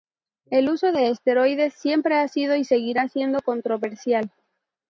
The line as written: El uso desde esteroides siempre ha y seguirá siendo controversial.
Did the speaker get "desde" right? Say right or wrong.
wrong